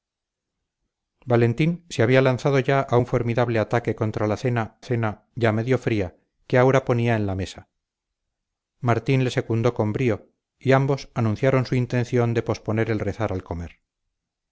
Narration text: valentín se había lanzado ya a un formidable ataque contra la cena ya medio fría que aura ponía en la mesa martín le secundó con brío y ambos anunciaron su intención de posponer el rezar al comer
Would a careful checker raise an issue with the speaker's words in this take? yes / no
yes